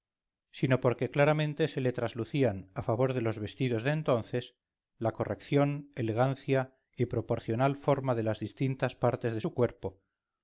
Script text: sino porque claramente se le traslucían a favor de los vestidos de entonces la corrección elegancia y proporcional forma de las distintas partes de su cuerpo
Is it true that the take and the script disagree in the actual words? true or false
false